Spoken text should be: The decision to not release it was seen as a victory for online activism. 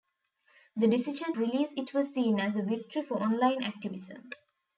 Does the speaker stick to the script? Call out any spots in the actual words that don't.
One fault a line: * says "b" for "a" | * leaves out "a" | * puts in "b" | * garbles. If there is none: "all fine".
* leaves out "to not"